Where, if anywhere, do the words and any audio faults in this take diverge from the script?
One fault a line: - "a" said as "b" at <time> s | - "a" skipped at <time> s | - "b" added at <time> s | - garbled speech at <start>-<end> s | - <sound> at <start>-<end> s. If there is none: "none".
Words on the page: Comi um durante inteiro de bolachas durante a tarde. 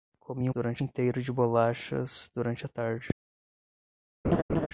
- laugh at 4.2-4.7 s